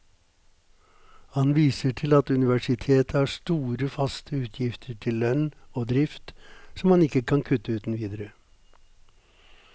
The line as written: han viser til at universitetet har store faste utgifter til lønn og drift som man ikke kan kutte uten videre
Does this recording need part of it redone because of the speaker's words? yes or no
no